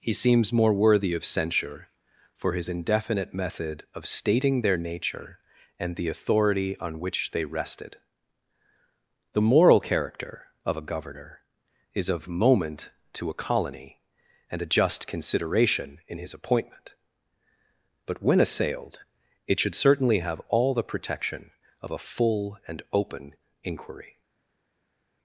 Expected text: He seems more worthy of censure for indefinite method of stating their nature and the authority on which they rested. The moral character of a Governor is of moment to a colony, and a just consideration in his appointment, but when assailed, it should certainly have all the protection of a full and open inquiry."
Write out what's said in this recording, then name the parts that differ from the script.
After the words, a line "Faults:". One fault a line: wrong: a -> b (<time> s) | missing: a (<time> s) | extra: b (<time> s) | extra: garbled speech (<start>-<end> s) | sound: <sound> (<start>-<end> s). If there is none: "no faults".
He seems more worthy of censure for his indefinite method of stating their nature and the authority on which they rested. The moral character of a Governor is of moment to a colony, and a just consideration in his appointment, but when assailed, it should certainly have all the protection of a full and open inquiry."
Faults:
extra: his (2.5 s)